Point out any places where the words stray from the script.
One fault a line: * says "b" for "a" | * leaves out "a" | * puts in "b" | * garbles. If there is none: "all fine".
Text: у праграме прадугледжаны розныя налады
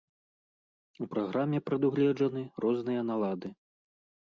all fine